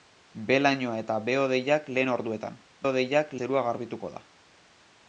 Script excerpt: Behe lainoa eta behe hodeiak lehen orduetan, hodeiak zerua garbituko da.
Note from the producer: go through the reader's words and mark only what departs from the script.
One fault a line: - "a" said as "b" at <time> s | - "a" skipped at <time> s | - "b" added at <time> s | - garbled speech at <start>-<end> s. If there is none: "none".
none